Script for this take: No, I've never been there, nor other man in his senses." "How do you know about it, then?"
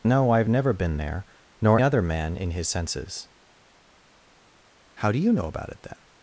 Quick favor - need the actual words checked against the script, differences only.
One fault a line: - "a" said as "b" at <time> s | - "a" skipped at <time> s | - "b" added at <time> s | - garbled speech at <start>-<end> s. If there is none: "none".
none